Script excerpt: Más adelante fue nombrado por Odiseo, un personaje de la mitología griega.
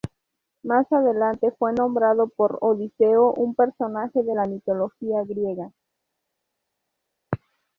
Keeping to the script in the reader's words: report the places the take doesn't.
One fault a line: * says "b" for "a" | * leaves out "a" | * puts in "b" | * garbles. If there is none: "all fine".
all fine